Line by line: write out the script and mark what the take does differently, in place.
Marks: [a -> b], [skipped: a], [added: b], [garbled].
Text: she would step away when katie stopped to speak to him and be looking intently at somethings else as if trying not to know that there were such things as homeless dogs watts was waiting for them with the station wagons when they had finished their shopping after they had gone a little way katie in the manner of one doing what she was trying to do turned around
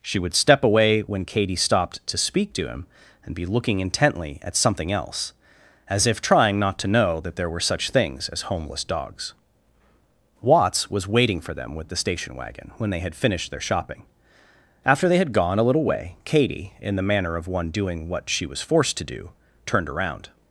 she would step away when katie stopped to speak to him and be looking intently at [somethings -> something] else as if trying not to know that there were such things as homeless dogs watts was waiting for them with the station [wagons -> wagon] when they had finished their shopping after they had gone a little way katie in the manner of one doing what she was [trying -> forced] to do turned around